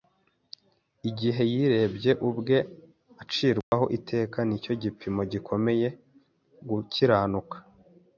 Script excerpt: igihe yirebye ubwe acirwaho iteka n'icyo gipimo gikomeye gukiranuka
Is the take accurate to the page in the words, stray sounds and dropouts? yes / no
no